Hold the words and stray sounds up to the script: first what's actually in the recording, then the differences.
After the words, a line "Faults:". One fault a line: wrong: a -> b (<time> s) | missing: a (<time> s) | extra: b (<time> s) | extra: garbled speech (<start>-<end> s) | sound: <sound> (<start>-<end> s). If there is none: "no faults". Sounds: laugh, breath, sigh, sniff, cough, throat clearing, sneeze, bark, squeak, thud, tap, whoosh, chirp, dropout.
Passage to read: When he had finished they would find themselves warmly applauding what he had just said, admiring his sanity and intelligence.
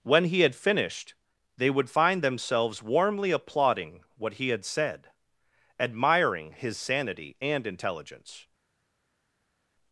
When he had finished they would find themselves warmly applauding what he had said, admiring his sanity and intelligence.
Faults:
missing: just (4.6 s)